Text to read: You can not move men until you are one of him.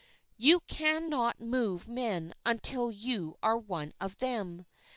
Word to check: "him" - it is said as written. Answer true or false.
false